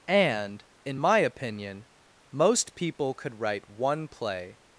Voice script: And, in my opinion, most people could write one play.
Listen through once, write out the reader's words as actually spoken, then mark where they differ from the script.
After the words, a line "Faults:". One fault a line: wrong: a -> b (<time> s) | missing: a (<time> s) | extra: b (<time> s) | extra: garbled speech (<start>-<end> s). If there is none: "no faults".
And, in my opinion, most people could write one play.
Faults:
no faults